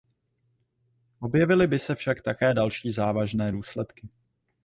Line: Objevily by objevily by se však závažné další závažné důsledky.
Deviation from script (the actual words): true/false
true